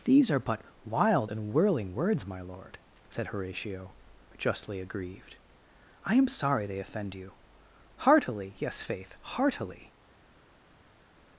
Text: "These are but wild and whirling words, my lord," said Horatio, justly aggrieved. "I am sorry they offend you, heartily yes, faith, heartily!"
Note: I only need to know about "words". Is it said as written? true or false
true